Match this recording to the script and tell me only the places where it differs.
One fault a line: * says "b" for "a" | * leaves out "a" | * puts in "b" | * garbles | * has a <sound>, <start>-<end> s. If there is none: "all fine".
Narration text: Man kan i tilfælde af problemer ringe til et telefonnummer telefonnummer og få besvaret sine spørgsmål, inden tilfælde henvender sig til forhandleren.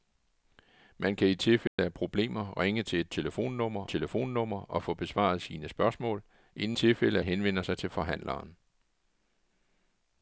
* has a dropout, 1.7-1.8 s